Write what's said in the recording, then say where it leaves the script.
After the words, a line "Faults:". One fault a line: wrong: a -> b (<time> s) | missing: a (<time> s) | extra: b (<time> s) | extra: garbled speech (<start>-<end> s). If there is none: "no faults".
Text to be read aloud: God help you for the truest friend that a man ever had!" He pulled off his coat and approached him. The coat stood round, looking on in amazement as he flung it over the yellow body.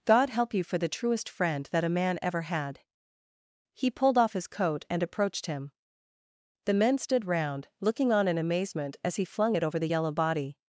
God help you for the truest friend that a man ever had!" He pulled off his coat and approached him. The men stood round, looking on in amazement as he flung it over the yellow body.
Faults:
wrong: coat -> men (6.7 s)